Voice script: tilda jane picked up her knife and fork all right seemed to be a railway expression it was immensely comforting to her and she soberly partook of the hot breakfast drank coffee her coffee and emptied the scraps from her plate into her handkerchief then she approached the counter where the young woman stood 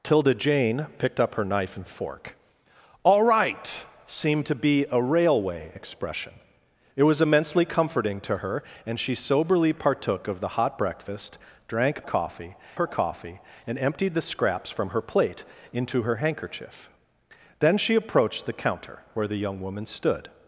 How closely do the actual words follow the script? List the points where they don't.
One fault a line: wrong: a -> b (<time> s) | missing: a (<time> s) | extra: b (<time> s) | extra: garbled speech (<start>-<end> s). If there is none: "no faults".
no faults